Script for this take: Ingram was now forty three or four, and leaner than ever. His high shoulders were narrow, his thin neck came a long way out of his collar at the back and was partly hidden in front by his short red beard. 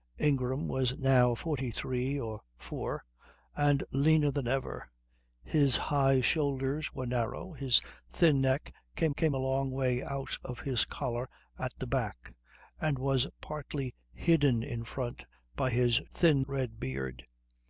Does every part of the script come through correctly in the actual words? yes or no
no